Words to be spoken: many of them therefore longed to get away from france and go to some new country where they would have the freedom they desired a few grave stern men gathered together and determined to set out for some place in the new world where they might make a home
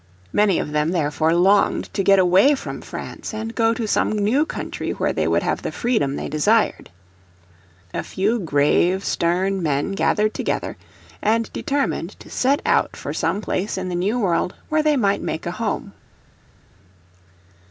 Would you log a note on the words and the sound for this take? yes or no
no